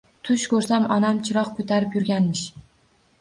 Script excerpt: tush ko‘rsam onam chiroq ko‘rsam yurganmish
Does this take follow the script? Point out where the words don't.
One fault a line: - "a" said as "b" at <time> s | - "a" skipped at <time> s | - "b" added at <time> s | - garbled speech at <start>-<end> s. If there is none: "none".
- "ko‘rsam" said as "ko‘tarib" at 1.6 s